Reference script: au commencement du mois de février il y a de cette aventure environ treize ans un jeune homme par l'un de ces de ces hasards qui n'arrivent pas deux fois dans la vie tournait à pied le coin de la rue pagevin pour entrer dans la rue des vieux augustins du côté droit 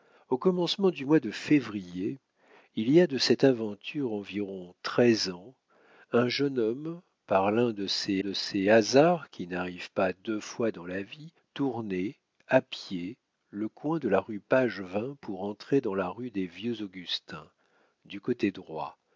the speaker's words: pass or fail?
pass